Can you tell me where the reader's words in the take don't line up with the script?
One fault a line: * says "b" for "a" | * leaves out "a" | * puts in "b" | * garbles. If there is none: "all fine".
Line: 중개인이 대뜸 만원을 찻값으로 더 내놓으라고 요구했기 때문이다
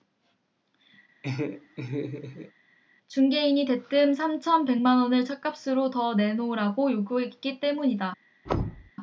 * puts in "삼천 백"